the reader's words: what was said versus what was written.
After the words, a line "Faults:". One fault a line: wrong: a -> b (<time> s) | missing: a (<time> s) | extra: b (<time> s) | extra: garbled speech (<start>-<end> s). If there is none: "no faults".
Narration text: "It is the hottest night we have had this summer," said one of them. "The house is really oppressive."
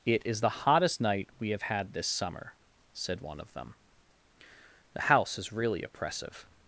"It is the hottest night we have had this summer," said one of them. "The house is really oppressive."
Faults:
no faults